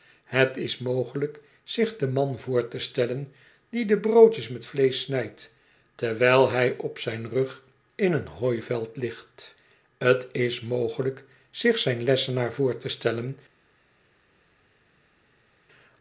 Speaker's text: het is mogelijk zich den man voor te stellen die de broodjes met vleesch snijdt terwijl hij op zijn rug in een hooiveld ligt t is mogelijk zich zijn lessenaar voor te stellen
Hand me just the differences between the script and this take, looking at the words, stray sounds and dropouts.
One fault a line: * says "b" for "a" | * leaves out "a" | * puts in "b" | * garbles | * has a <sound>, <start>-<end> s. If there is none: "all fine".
all fine